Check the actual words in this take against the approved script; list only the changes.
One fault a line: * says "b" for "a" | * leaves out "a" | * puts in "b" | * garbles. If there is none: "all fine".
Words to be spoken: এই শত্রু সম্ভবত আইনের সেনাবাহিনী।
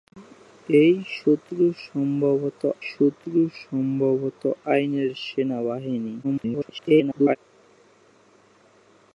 * puts in "শত্রু সম্ভবত"
* garbles